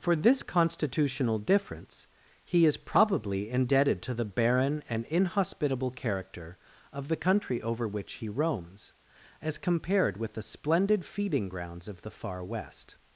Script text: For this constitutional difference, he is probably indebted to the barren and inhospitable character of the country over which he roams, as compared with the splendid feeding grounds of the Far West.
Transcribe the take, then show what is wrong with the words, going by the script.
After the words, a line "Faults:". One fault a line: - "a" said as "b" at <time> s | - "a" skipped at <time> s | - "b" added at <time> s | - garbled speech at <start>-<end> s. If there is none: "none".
For this constitutional difference, he is probably indebted to the barren and inhospitable character of the country over which he roams, as compared with the splendid feeding grounds of the Far West.
Faults:
none